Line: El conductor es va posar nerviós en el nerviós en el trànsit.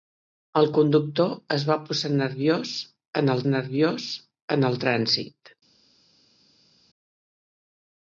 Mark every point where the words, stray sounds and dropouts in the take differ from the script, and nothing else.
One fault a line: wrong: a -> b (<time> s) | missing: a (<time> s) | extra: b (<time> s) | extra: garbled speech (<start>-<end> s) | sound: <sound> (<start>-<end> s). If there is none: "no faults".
no faults